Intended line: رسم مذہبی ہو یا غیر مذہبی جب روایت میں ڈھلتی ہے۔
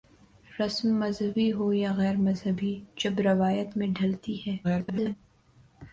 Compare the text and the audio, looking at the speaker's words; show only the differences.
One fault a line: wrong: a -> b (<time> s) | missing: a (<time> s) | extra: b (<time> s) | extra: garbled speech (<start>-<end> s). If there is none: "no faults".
extra: garbled speech (4.6-5.2 s)